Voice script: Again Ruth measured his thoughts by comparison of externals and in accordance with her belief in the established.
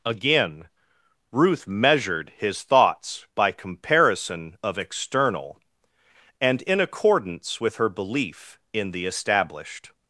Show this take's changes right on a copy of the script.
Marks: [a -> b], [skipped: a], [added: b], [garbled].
Again Ruth measured his thoughts by comparison of [externals -> external] and in accordance with her belief in the established.